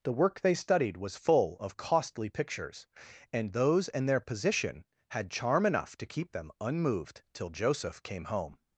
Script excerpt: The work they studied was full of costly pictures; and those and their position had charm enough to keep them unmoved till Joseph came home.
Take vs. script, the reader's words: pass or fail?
pass